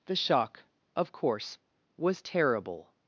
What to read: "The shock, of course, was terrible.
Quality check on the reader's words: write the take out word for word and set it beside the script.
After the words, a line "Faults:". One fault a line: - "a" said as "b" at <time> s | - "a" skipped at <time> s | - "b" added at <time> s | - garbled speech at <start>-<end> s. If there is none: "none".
"The shock, of course, was terrible.
Faults:
none